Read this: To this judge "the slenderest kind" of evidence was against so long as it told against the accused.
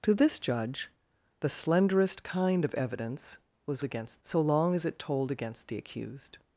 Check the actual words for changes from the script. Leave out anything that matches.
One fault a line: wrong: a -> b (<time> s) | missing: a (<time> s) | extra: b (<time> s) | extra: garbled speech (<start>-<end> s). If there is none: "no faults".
no faults